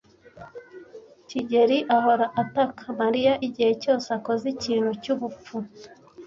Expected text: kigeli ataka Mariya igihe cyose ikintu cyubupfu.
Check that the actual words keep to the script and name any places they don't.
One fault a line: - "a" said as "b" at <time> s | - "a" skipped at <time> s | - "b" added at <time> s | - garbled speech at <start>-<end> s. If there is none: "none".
- "ahora" added at 1.9 s
- "akoze" added at 4.2 s